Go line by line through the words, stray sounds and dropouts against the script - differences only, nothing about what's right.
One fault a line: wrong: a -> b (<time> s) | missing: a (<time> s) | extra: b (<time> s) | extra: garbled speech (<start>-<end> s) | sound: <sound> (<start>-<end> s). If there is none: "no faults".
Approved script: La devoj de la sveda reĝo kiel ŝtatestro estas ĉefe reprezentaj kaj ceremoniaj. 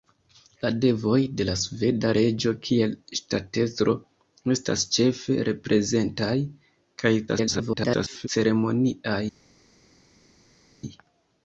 extra: garbled speech (7.3-8.3 s)